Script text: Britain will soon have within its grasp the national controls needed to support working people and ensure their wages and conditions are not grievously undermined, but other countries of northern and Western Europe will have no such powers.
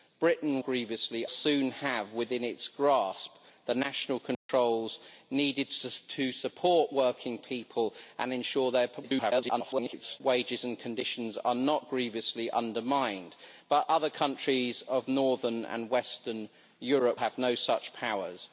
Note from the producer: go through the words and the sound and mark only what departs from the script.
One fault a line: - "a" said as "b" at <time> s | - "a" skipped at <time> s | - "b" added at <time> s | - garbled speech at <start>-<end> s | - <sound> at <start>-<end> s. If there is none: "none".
- "will" said as "grievously" at 0.6 s
- dropout at 4.3-4.5 s
- garbled speech at 9.0-10.2 s
- "will" skipped at 17.2 s